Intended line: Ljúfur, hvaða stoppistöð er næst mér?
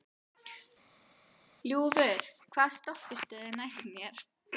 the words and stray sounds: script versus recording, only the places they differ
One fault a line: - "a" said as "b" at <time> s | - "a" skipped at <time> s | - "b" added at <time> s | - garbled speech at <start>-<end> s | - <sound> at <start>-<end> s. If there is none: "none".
none